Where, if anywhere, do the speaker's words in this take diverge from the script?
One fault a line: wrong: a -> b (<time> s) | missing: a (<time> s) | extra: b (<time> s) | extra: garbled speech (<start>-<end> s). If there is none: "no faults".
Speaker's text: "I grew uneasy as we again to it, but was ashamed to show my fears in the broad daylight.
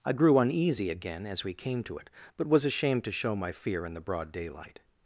extra: again (0.9 s)
wrong: again -> came (1.5 s)
wrong: fears -> fear (3.5 s)